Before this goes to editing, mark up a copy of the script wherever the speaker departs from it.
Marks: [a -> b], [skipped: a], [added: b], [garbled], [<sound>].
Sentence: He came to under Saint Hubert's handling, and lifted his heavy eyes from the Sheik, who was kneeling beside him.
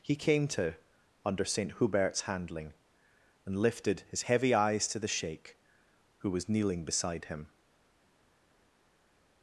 He came to under Saint Hubert's handling, and lifted his heavy eyes [from -> to] the Sheik, who was kneeling beside him.